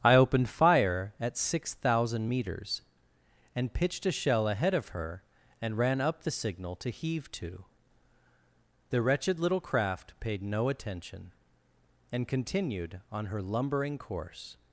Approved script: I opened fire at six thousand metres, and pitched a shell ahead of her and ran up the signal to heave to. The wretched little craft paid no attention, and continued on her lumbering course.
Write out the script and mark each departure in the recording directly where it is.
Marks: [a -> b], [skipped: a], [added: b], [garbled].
I opened fire at six thousand metres, and pitched a shell ahead of her and ran up the signal to heave to. The wretched little craft paid no attention, and continued on her lumbering course.